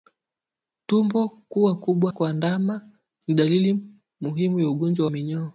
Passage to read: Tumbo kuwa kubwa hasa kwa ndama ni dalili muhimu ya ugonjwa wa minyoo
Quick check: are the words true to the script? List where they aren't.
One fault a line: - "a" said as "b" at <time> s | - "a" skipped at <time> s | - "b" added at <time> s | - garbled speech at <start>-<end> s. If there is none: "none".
- "hasa" skipped at 2.1 s
- "wa" skipped at 5.1 s